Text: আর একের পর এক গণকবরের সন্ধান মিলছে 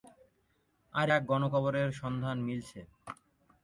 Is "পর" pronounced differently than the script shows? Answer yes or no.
yes